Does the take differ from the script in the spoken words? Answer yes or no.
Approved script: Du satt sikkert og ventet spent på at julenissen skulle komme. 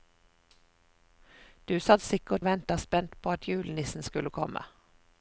no